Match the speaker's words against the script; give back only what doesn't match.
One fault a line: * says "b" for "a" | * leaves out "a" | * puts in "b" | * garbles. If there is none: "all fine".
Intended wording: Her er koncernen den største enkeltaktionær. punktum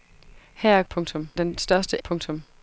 * says "punktum" for "koncernen"
* leaves out "enkeltaktionær"